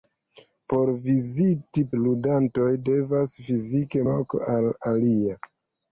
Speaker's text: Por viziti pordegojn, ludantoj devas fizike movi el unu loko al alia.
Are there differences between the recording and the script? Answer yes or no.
yes